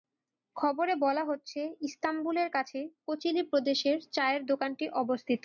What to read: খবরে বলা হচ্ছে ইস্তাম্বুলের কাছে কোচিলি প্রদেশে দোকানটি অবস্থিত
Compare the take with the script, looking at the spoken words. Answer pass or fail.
fail